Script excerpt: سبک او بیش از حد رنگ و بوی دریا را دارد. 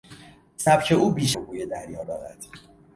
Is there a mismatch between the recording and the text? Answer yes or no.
yes